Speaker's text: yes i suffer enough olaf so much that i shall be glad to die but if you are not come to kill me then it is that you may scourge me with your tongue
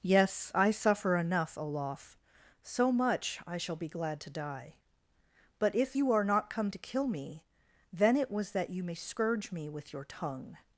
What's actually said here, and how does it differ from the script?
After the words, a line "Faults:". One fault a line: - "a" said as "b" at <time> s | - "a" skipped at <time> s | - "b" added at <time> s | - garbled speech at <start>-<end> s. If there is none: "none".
yes i suffer enough olaf so much i shall be glad to die but if you are not come to kill me then it was that you may scourge me with your tongue
Faults:
- "that" skipped at 3.4 s
- "is" said as "was" at 8.3 s